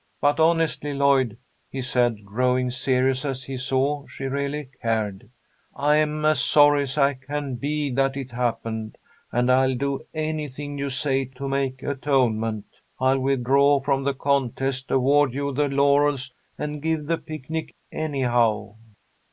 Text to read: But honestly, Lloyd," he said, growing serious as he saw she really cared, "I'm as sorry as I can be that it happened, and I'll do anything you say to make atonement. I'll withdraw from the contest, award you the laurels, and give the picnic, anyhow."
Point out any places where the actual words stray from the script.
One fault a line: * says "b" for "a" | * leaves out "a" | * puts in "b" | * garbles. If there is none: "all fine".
all fine